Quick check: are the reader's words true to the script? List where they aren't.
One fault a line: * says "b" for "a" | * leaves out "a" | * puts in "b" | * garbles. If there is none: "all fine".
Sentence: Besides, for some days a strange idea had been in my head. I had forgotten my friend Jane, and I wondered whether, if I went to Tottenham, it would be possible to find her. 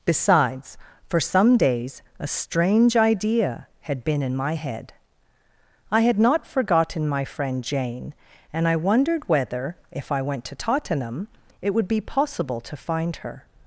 * puts in "not"